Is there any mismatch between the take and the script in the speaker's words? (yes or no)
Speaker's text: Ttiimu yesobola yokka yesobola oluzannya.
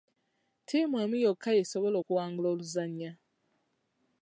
yes